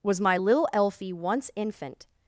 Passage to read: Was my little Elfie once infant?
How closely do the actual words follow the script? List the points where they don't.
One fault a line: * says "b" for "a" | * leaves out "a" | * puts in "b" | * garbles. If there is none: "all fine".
all fine